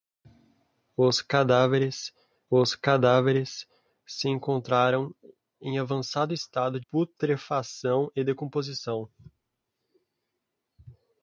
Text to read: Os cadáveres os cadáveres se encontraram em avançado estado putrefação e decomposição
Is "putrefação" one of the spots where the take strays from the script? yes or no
no